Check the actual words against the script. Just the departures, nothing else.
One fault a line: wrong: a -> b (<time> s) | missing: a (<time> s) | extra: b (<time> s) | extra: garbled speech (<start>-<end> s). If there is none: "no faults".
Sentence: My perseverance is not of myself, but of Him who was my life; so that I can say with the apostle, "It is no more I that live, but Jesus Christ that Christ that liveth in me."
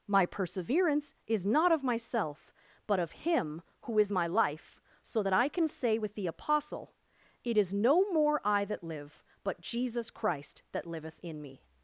wrong: was -> is (4.0 s)
missing: Christ that (10.9 s)